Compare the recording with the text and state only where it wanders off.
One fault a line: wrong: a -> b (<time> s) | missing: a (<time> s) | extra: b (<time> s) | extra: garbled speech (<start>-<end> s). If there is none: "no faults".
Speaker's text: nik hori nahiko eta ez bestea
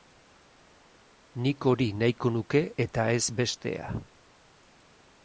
extra: nuke (2.4 s)